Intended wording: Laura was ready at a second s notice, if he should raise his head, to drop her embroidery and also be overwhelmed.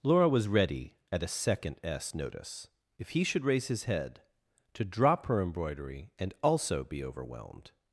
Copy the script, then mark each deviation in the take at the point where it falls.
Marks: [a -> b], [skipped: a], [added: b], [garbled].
Laura was ready at a second s notice, if he should raise his head, to drop her embroidery and also be overwhelmed.